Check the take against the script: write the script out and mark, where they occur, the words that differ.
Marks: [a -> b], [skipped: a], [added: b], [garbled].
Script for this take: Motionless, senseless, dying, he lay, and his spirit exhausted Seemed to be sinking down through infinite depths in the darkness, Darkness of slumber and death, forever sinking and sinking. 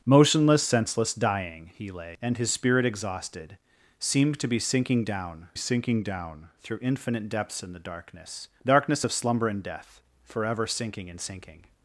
Motionless, senseless, dying, he lay, and his spirit exhausted Seemed to be sinking down [added: sinking down] through infinite depths in the darkness, Darkness of slumber and death, forever sinking and sinking.